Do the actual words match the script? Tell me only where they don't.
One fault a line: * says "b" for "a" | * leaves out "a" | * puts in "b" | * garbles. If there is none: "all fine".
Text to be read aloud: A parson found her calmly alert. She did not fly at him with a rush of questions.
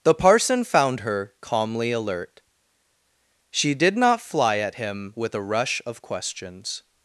* says "The" for "A"